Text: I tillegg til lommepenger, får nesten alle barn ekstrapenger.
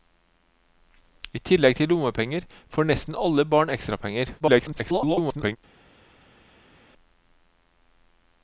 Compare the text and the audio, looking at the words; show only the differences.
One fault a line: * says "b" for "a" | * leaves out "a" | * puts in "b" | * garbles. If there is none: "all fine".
* garbles